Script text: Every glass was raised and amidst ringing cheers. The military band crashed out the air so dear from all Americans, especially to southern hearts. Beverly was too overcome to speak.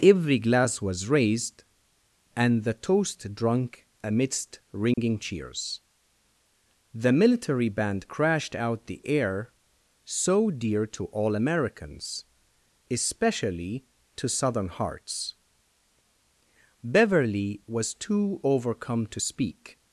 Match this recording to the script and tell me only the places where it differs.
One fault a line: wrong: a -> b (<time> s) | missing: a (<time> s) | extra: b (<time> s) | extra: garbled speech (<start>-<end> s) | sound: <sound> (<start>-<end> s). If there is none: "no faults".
extra: the toast drunk (2.6 s)
sound: dropout (4.9-5.0 s)
wrong: from -> to (10.9 s)